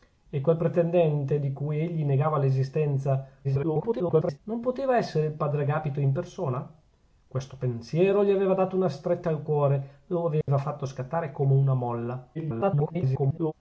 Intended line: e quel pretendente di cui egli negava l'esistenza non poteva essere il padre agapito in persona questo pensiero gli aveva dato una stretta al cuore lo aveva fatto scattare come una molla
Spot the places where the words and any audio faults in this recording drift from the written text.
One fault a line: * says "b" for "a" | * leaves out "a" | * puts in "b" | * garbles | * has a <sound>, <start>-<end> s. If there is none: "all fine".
* garbles
* has a dropout, 10.4-10.5 s
* garbles